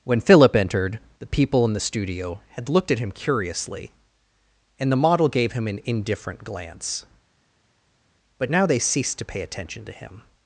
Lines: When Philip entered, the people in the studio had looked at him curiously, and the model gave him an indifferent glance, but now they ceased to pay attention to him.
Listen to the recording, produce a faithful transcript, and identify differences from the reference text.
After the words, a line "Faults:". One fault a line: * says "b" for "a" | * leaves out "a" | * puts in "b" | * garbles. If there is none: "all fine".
When Philip entered, the people in the studio had looked at him curiously, and the model gave him an indifferent glance, but now they ceased to pay attention to him.
Faults:
all fine